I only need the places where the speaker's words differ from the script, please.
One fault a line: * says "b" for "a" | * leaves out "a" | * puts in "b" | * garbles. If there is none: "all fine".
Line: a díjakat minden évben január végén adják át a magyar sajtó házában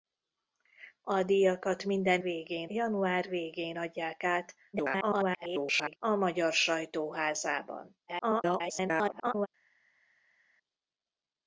* says "végén" for "évben"
* garbles
* garbles